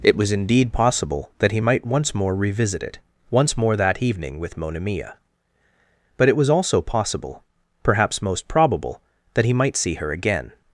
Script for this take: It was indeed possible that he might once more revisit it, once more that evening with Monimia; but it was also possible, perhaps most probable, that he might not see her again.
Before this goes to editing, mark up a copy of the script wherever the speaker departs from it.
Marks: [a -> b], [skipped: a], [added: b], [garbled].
It was indeed possible that he might once more revisit it, once more that evening with Monimia; but it was also possible, perhaps most probable, that he might [skipped: not] see her again.